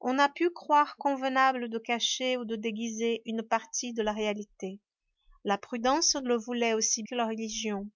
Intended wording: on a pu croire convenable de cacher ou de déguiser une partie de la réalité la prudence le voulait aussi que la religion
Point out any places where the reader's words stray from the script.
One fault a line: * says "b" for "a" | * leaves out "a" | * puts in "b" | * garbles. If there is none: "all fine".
all fine